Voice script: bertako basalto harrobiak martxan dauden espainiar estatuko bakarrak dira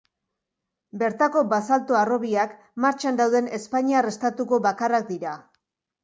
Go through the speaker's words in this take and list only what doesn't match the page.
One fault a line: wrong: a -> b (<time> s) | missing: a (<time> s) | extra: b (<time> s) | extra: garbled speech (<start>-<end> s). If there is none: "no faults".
no faults